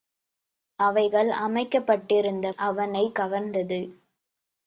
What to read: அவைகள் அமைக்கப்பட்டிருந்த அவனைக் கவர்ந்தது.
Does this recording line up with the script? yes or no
yes